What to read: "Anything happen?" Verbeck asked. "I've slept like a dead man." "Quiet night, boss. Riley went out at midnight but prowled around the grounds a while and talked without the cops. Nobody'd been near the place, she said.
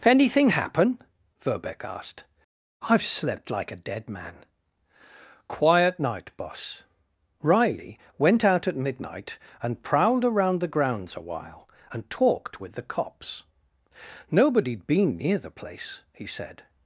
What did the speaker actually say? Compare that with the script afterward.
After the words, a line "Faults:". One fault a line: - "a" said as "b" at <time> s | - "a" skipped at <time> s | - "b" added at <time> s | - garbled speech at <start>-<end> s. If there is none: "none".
"Anything happen?" Verbeck asked. "I've slept like a dead man." "Quiet night, boss. Riley went out at midnight and prowled around the grounds a while and talked with the cops. Nobody'd been near the place, he said.
Faults:
- "but" said as "and" at 9.6 s
- "without" said as "with" at 12.6 s
- "she" said as "he" at 16.1 s